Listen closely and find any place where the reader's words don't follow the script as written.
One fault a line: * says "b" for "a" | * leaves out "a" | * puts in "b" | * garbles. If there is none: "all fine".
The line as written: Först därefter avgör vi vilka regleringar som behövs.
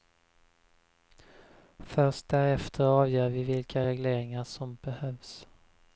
all fine